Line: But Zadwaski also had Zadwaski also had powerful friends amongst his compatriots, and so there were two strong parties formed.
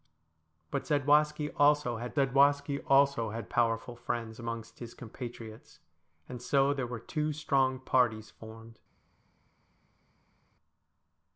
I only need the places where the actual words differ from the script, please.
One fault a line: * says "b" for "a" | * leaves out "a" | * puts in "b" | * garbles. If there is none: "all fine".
all fine